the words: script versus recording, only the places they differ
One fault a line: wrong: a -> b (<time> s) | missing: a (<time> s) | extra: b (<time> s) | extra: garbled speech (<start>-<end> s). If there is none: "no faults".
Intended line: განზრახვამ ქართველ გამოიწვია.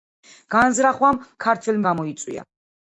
no faults